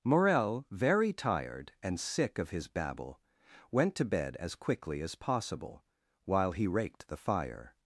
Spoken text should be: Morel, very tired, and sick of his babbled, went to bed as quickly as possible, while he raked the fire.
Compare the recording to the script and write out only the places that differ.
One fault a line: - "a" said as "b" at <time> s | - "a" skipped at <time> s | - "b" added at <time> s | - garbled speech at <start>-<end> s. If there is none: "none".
- "babbled" said as "babble" at 2.7 s